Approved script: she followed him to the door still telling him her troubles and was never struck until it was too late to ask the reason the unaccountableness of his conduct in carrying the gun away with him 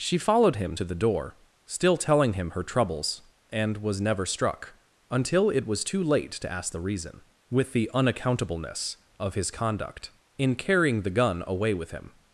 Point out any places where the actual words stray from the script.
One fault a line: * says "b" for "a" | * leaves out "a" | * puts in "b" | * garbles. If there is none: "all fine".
* puts in "with"